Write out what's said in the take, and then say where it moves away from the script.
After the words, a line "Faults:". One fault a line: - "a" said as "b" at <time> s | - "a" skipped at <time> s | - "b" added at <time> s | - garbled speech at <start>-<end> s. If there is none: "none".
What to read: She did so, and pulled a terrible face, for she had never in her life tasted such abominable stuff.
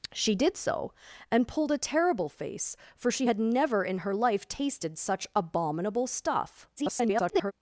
She did so, and pulled a terrible face, for she had never in her life tasted such abominable stuff. [garbled]
Faults:
- garbled speech at 6.8-7.5 s